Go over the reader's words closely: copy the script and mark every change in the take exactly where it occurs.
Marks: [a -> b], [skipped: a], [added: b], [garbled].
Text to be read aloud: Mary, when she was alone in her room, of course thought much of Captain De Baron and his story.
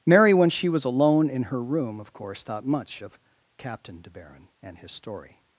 Mary, when she was alone in her room, of course thought much of Captain De Baron and his story.